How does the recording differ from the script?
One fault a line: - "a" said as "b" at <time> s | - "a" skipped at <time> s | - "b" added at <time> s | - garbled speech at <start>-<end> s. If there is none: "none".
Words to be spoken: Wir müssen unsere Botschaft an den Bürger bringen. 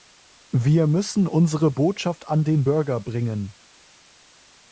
none